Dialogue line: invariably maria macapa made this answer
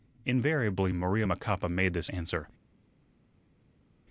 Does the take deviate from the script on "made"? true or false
false